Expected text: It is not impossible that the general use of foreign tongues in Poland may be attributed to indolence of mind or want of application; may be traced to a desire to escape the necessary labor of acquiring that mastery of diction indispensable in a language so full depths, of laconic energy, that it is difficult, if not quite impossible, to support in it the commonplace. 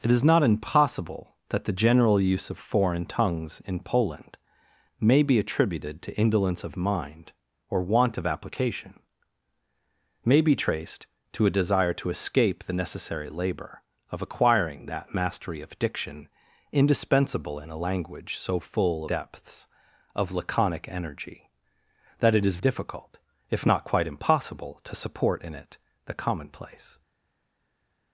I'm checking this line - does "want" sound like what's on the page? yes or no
yes